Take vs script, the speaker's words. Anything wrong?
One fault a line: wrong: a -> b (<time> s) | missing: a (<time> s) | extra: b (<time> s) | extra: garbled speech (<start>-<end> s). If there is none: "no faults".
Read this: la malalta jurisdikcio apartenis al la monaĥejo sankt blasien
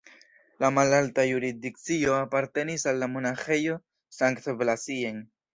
no faults